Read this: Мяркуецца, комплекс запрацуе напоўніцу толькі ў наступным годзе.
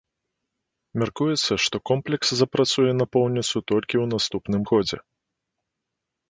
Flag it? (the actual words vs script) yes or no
yes